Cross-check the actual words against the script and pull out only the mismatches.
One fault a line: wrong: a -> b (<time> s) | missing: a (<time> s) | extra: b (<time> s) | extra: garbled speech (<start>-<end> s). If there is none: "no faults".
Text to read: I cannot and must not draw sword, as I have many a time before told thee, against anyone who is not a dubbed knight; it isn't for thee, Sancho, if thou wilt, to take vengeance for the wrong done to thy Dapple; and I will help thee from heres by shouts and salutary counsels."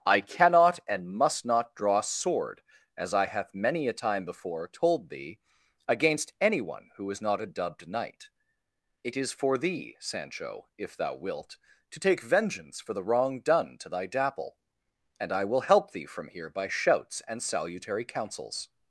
wrong: isn't -> is (9.2 s)
wrong: heres -> here (16.3 s)